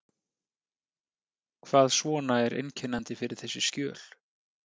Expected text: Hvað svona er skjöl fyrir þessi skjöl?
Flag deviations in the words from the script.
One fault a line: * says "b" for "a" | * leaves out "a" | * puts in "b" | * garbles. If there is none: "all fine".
* says "einkennandi" for "skjöl"